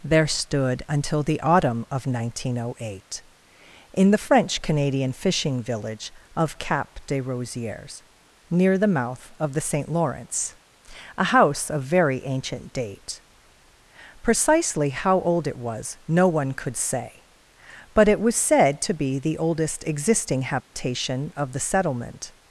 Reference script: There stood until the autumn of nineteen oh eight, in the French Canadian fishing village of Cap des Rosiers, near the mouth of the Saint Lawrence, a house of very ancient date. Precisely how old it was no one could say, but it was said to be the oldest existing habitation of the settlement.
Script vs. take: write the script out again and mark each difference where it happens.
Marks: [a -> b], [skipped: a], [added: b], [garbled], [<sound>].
There stood until the autumn of nineteen oh eight, in the French Canadian fishing village of Cap des Rosiers, near the mouth of the Saint Lawrence, a house of very ancient date. Precisely how old it was no one could say, but it was said to be the oldest existing habitation [dropout] of the settlement.